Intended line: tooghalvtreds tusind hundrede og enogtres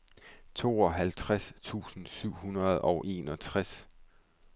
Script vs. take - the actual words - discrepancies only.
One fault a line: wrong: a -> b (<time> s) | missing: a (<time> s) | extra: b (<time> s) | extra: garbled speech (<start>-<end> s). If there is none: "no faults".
extra: syv (2.1 s)